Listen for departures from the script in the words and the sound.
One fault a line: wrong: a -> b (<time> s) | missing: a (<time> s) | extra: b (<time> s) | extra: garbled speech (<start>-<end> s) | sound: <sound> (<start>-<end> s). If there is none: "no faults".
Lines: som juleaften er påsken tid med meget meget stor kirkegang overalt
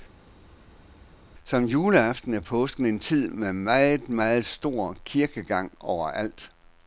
extra: en (2.9 s)